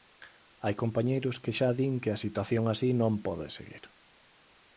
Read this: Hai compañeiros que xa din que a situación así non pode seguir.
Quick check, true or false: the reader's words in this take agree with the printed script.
true